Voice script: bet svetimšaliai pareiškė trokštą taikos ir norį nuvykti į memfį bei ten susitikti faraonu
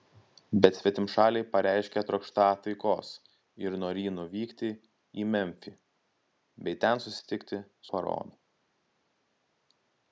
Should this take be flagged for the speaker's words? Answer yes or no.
no